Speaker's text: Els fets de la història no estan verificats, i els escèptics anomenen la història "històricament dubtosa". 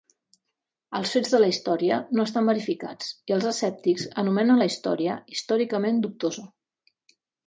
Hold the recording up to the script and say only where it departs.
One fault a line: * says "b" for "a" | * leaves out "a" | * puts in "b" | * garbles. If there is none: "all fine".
all fine